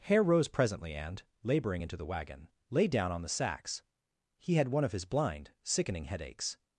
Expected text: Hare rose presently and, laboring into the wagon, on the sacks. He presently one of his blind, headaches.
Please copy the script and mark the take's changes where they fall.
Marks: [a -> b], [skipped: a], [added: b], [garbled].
Hare rose presently and, laboring into the wagon, [added: lay down] on the sacks. He [presently -> had] one of his blind, [added: sickening] headaches.